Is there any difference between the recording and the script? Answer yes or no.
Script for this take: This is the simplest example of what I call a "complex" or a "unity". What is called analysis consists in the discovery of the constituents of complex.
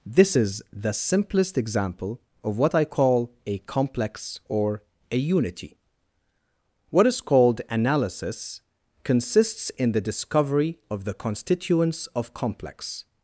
no